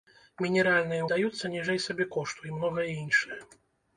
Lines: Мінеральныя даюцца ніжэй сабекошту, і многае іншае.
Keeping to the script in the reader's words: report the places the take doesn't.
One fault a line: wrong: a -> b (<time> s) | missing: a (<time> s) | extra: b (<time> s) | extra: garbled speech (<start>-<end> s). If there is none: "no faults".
no faults